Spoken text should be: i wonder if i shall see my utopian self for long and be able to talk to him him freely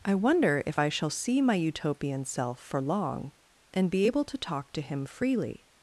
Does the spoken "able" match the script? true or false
true